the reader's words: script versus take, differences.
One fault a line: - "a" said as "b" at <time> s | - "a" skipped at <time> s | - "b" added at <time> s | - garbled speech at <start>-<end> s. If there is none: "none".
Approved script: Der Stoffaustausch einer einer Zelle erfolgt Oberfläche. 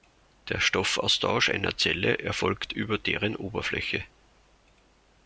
- "einer" skipped at 1.8 s
- "über deren" added at 2.7 s